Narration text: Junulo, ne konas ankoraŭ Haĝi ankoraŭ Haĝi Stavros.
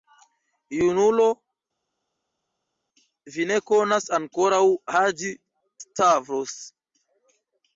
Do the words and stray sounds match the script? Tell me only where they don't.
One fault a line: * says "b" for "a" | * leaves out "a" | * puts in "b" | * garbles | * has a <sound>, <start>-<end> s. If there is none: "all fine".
* puts in "vi"
* leaves out "ankoraŭ Haĝi"